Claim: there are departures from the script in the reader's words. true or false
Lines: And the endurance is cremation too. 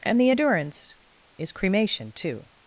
false